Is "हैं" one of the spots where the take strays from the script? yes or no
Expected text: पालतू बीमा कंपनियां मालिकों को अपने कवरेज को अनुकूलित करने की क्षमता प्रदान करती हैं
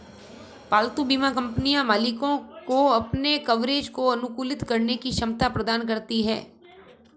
no